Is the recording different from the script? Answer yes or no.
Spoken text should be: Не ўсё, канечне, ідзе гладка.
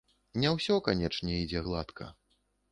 no